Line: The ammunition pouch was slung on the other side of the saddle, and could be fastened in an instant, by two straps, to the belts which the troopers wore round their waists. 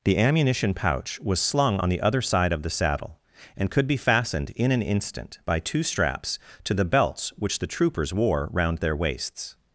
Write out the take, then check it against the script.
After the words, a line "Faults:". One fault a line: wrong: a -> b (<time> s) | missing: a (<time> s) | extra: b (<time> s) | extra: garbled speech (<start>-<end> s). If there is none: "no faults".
The ammunition pouch was slung on the other side of the saddle, and could be fastened in an instant, by two straps, to the belts which the troopers wore round their waists.
Faults:
no faults